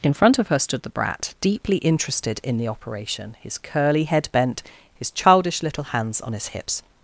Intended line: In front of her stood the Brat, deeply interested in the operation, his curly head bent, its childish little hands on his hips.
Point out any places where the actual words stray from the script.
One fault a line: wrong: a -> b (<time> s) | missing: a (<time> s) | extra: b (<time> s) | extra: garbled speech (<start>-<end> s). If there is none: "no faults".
wrong: its -> his (5.0 s)